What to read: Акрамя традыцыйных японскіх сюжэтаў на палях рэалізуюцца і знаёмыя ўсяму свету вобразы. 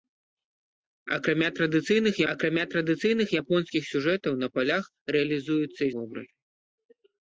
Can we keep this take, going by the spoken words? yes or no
no